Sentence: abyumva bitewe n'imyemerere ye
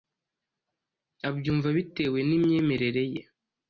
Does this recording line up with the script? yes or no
yes